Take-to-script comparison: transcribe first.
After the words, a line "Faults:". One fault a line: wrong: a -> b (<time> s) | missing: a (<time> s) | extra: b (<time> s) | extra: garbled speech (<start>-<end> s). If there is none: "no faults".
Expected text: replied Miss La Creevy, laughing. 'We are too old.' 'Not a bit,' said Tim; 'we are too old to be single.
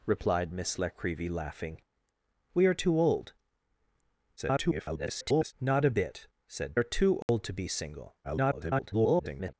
replied Miss La Creevy, laughing. 'We are too old.' [garbled] 'Not a bit,' said Are too old to be single. [garbled]
Faults:
extra: garbled speech (4.4-5.5 s)
missing: Tim we (6.8 s)
extra: garbled speech (8.2-9.5 s)